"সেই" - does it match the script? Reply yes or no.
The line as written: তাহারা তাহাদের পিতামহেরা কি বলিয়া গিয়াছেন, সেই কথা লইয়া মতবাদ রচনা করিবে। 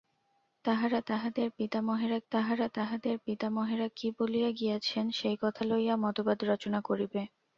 yes